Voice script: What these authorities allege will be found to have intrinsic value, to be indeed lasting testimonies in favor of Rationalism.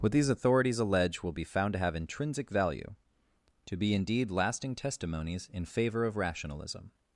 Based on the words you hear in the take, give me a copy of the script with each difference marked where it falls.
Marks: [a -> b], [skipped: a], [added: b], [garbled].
What these authorities allege will be found to have intrinsic value, to be indeed lasting testimonies in favor of Rationalism.